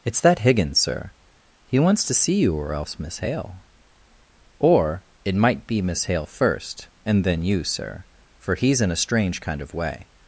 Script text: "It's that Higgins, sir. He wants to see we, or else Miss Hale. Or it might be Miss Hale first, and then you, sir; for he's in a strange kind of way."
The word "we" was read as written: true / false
false